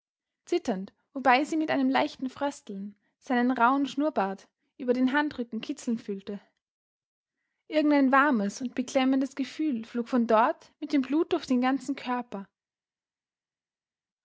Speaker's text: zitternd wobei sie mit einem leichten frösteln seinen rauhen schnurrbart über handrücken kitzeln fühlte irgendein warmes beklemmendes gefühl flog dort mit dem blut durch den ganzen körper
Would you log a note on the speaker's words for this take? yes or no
yes